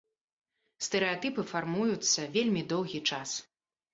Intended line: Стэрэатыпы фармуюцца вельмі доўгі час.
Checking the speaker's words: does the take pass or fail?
pass